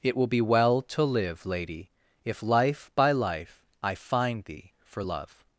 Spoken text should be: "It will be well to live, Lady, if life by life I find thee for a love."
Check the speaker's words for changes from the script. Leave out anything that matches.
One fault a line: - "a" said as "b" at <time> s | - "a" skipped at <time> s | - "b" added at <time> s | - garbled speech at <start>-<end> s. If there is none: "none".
- "a" skipped at 5.0 s